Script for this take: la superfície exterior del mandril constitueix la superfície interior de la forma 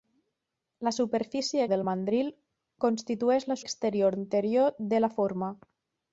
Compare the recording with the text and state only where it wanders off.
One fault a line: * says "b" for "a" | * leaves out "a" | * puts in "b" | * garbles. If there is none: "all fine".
* leaves out "exterior"
* says "exterior" for "superfície"